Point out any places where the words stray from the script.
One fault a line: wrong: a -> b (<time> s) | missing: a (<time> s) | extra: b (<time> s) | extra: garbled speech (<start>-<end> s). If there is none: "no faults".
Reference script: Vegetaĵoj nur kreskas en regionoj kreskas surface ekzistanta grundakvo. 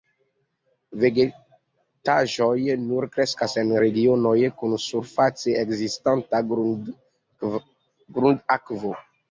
wrong: kreskas -> kun (4.6 s)